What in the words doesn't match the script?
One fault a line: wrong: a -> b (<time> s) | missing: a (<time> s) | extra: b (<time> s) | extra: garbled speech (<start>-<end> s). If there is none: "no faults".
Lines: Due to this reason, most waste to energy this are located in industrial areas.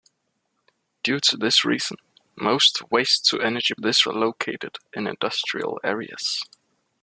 no faults